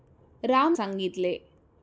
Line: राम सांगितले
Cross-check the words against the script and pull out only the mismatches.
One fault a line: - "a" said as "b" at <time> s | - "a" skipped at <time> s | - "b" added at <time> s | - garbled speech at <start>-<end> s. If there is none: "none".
none